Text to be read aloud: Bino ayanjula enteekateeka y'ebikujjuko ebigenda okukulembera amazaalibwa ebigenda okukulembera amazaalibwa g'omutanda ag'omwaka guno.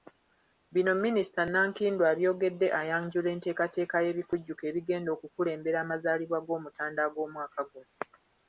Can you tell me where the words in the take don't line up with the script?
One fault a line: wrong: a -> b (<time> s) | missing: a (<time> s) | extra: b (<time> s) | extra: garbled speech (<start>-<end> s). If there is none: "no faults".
extra: minisita Nankindu abyogedde (1.0 s)
missing: ebigenda okukulembera amazaalibwa (6.4 s)